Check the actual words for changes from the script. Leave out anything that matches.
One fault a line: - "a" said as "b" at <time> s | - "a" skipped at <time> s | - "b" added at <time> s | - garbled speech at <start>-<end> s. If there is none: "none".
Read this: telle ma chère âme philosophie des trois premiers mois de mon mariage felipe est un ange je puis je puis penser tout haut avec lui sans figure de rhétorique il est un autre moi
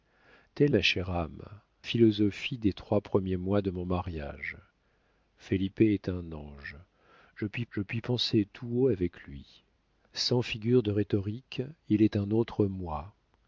none